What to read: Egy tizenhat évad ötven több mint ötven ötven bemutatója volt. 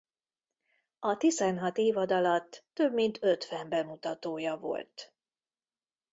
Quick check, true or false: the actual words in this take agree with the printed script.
false